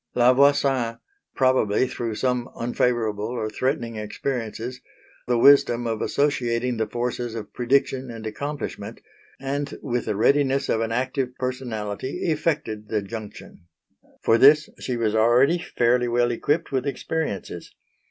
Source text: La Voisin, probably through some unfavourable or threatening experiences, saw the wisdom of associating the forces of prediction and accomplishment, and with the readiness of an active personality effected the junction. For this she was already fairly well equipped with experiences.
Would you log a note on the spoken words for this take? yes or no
yes